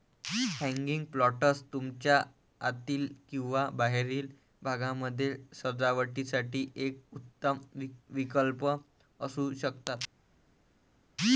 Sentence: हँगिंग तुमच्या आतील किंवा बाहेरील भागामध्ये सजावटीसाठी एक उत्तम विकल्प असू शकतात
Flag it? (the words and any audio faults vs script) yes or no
yes